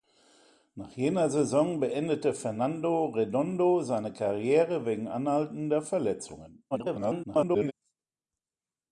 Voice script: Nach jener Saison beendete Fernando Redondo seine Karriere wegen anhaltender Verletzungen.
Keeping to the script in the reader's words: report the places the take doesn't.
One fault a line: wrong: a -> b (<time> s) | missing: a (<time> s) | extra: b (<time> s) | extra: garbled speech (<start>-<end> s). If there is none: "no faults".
extra: garbled speech (6.7-7.7 s)